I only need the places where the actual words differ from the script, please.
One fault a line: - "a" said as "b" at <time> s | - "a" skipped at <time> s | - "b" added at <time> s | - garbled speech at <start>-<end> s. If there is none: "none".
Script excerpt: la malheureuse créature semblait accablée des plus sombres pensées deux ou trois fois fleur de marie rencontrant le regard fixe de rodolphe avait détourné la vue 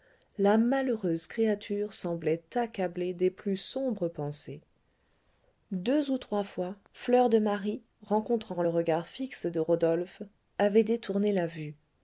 none